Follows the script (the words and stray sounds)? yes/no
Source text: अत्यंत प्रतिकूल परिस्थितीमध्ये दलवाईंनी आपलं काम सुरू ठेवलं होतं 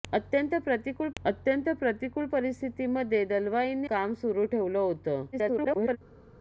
no